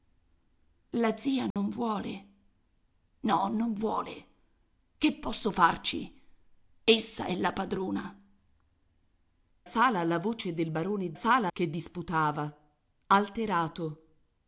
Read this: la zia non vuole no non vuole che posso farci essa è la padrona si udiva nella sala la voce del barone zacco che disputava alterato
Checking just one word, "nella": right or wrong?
wrong